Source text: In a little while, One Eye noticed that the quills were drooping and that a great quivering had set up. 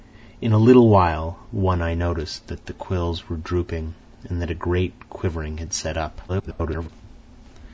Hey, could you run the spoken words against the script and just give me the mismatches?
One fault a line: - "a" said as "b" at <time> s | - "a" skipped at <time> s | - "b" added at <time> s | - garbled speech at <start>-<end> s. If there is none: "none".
- garbled speech at 6.3-6.9 s